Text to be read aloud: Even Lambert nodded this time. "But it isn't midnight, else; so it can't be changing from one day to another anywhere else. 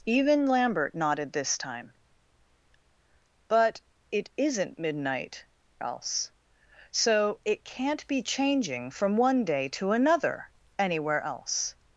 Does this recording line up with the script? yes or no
yes